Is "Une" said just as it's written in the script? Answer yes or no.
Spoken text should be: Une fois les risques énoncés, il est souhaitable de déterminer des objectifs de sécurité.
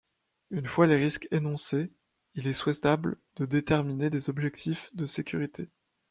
yes